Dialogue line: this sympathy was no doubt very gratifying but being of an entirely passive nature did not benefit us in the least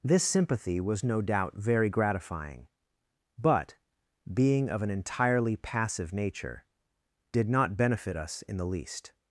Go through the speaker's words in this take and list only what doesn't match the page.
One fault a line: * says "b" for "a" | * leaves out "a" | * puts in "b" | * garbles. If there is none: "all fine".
all fine